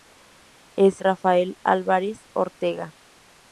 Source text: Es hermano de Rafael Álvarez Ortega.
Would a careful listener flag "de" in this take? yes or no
yes